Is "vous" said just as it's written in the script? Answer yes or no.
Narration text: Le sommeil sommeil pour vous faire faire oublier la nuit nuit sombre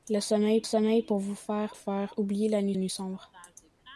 yes